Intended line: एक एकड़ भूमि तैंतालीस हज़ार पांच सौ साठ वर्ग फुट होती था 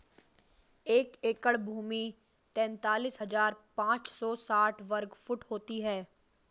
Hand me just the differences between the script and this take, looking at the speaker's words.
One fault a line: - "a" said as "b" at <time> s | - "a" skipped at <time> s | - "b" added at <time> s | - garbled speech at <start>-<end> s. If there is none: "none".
- "था" said as "है" at 5.8 s